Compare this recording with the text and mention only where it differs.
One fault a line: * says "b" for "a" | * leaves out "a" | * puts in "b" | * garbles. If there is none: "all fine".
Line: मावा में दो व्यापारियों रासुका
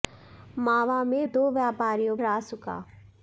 all fine